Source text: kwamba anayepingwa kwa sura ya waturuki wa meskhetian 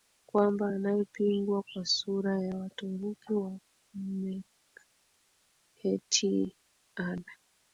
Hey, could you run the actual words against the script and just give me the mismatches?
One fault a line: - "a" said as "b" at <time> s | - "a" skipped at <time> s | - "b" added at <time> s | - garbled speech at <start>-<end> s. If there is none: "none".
none